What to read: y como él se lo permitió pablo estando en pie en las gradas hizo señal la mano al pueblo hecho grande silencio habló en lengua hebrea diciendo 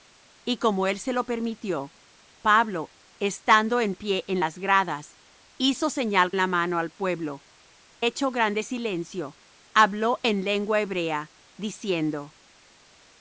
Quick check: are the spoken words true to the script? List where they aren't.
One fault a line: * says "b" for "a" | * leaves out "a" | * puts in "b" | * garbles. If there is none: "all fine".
all fine